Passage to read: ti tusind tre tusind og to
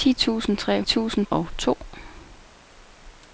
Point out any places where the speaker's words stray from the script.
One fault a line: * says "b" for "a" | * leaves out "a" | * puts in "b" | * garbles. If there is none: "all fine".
all fine